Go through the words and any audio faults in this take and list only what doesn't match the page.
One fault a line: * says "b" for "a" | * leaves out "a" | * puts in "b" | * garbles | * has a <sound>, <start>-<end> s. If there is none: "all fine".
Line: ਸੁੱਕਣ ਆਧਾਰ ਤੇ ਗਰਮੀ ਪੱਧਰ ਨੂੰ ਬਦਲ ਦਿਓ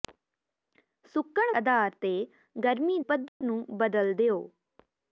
* has a dropout, 3.3-3.4 s